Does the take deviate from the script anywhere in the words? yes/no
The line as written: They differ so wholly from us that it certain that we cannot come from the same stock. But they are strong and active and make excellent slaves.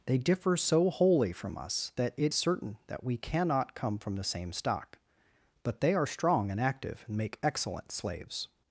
no